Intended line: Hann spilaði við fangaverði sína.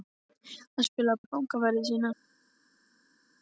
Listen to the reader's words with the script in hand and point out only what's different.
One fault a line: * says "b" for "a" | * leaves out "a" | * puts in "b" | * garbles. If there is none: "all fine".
all fine